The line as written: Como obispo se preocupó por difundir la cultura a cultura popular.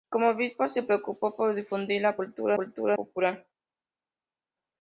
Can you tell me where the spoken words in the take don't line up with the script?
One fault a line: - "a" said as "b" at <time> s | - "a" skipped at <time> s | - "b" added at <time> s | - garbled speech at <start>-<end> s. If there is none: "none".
none